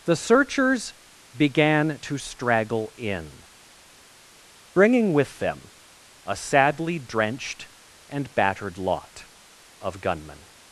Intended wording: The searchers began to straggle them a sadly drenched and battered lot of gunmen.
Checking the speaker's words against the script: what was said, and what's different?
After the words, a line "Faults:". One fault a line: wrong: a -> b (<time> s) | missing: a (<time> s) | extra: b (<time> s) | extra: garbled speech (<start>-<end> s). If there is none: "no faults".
The searchers began to straggle in, bringing with them a sadly drenched and battered lot of gunmen.
Faults:
extra: in bringing with (3.0 s)